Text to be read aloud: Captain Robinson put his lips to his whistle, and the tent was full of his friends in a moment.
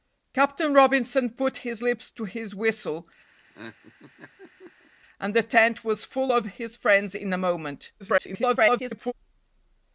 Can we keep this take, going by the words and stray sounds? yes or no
no